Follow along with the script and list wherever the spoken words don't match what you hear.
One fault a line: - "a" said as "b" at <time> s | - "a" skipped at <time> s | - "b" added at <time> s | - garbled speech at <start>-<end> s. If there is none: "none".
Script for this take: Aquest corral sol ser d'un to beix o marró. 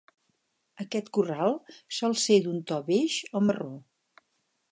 none